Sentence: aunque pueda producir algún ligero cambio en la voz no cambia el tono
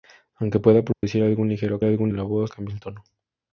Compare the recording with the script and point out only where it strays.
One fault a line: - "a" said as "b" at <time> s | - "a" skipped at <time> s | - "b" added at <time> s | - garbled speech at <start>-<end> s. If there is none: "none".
- "cambio" said as "algún" at 1.8 s
- "no" skipped at 2.5 s